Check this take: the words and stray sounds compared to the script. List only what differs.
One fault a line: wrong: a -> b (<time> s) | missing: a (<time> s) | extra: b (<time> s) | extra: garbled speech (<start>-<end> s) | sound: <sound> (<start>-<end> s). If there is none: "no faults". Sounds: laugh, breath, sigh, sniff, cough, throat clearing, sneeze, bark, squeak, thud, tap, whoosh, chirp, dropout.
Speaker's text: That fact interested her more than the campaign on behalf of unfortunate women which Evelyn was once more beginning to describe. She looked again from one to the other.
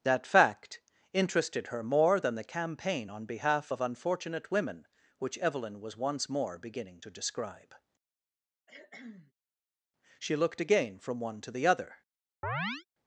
sound: cough (8.7-9.3 s)
sound: chirp (12.4-12.8 s)